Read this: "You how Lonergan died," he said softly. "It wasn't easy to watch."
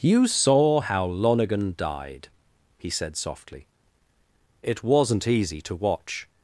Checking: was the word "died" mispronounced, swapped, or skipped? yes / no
no